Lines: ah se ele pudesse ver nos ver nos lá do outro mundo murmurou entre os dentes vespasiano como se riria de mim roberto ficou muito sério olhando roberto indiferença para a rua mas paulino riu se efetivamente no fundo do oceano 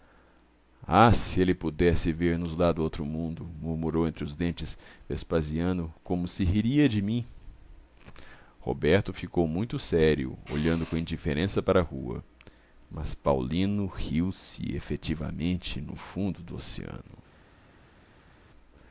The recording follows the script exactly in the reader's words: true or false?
false